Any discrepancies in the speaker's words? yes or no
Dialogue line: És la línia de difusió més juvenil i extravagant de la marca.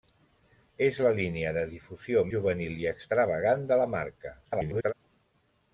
yes